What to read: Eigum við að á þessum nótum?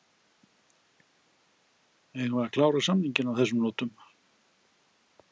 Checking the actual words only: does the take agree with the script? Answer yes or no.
no